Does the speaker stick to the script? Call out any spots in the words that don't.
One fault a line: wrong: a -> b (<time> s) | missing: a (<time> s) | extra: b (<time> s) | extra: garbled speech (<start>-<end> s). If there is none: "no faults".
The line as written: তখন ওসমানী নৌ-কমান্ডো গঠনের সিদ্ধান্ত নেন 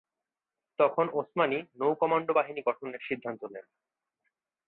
extra: বাহিনী (2.3 s)